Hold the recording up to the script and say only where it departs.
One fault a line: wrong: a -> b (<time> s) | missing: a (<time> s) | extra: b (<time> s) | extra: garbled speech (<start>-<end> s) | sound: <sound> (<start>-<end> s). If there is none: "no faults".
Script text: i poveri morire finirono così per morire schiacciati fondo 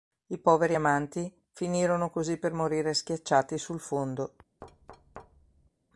wrong: morire -> amanti (0.7 s)
extra: sul (3.6 s)
sound: thud (4.6-5.7 s)